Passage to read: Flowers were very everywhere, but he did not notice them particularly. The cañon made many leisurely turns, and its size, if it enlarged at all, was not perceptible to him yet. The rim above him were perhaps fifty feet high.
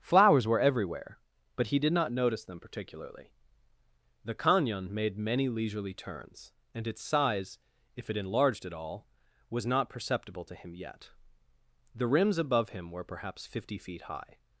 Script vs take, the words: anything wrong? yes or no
yes